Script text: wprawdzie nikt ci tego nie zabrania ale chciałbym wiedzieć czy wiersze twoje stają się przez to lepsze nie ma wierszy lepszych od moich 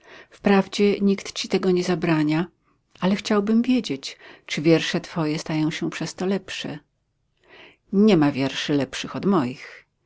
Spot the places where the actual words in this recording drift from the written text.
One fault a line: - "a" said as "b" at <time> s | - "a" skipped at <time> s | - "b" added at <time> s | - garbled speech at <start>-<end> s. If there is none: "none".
none